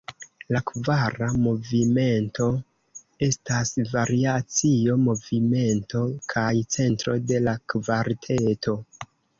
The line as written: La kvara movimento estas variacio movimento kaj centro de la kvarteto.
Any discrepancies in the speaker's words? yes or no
no